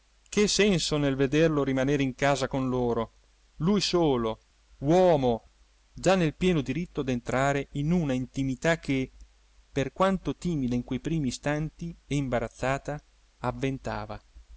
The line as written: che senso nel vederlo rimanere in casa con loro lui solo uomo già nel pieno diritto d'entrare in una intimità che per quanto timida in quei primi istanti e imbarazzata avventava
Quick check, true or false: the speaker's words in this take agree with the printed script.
true